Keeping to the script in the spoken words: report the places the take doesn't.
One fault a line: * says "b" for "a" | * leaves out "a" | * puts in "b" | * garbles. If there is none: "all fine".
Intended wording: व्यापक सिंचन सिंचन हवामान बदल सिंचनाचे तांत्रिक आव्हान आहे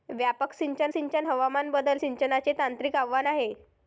all fine